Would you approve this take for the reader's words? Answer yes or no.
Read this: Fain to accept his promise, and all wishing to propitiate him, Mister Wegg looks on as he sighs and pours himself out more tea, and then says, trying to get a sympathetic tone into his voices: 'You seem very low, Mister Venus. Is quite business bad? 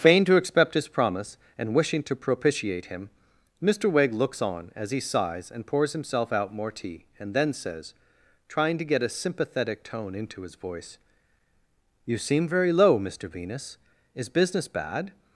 no